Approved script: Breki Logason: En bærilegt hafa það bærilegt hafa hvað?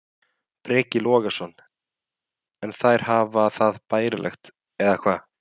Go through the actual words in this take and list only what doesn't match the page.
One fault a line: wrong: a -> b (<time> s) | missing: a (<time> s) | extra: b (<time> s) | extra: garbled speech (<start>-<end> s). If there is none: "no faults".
wrong: bærilegt -> þær (2.8 s)
wrong: hafa -> eða (4.9 s)